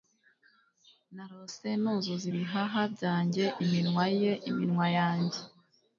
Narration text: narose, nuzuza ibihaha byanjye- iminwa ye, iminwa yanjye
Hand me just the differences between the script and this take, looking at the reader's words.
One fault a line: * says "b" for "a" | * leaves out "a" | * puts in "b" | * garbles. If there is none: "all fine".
all fine